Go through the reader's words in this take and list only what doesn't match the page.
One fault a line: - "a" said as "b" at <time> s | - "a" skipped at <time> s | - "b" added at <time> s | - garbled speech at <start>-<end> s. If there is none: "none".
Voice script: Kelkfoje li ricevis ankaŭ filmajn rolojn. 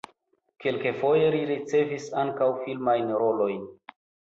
none